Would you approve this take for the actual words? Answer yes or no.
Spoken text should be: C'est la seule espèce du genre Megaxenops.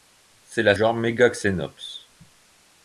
no